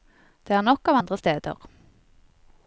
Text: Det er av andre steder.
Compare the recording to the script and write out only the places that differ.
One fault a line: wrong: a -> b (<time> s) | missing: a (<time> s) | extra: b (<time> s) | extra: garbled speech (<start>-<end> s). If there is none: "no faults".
extra: nok (0.7 s)